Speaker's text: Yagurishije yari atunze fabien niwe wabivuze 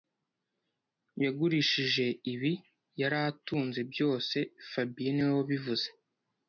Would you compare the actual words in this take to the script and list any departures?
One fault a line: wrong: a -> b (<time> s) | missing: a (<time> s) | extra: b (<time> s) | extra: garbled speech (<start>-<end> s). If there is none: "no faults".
extra: ibi (2.3 s)
extra: byose (3.9 s)